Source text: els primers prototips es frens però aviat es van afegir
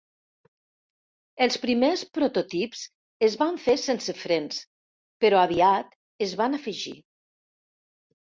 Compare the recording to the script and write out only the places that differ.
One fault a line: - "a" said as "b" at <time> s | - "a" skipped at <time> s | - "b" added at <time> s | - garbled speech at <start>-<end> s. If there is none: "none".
- "van fer sense" added at 3.4 s